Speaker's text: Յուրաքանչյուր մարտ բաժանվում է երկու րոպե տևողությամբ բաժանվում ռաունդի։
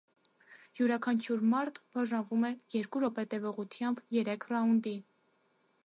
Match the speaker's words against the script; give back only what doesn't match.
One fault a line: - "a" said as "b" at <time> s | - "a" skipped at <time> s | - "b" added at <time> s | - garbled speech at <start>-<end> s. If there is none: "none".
- "բաժանվում" said as "երեք" at 4.2 s